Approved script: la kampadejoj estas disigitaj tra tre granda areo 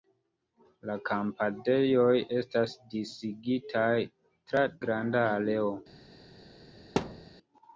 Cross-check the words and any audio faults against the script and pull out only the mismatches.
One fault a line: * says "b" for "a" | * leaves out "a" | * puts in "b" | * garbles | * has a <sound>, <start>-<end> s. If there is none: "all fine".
* leaves out "tre"
* has a thud, 7.0-7.3 s